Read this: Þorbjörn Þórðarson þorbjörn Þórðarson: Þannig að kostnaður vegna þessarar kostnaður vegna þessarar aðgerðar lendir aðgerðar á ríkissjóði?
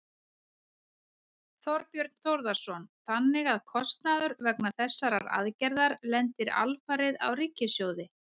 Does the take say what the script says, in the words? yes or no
no